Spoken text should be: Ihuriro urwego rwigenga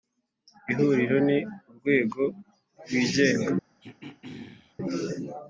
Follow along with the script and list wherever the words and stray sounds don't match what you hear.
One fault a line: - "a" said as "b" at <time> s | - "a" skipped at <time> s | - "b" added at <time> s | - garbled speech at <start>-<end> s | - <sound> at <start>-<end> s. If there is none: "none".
- "ni" added at 1.3 s
- throat clearing at 3.8-4.8 s